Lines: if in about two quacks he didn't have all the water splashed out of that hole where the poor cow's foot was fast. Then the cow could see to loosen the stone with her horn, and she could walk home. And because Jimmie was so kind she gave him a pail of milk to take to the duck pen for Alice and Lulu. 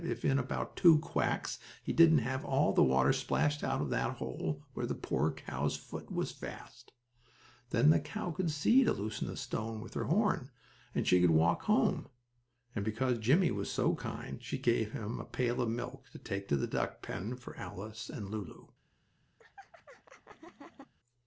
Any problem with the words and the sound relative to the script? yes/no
yes